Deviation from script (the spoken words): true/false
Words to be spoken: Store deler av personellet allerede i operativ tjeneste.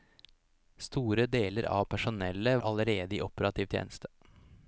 false